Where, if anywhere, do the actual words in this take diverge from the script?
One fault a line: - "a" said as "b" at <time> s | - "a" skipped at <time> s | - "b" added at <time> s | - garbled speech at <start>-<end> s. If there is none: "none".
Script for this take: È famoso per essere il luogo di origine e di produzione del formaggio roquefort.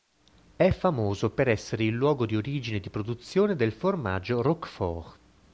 none